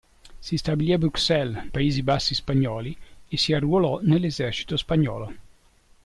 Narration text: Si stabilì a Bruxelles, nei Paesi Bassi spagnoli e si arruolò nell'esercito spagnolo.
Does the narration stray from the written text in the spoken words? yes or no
yes